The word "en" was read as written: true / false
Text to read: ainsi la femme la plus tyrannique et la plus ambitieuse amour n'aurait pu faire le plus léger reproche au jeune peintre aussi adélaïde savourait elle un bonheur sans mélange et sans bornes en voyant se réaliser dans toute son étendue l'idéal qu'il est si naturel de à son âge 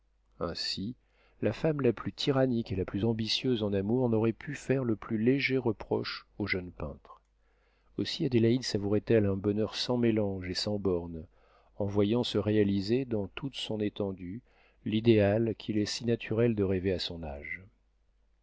true